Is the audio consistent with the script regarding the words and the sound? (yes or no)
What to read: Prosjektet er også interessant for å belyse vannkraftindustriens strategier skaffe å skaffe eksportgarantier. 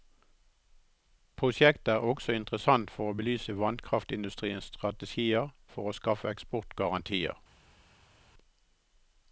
no